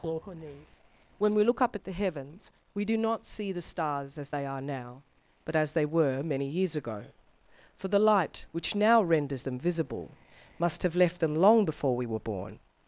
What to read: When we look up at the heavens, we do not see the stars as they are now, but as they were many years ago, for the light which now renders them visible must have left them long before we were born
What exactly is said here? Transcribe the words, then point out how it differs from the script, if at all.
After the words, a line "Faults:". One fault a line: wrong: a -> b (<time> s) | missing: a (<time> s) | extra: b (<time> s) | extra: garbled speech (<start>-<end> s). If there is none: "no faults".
or her knees When we look up at the heavens, we do not see the stars as they are now, but as they were many years ago, for the light which now renders them visible must have left them long before we were born
Faults:
extra: or her knees (0.0 s)